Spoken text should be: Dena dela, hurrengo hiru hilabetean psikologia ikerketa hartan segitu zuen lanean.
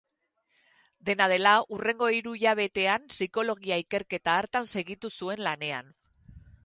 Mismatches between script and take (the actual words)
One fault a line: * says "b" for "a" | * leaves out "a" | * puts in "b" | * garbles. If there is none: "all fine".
all fine